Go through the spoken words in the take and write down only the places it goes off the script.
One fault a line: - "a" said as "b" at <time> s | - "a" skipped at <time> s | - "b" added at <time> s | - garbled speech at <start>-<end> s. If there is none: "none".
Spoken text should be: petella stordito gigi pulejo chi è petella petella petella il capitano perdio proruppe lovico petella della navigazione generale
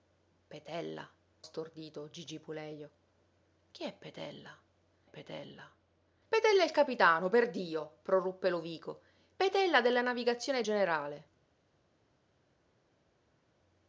none